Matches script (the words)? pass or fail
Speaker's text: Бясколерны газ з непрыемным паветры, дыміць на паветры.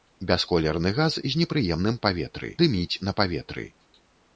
pass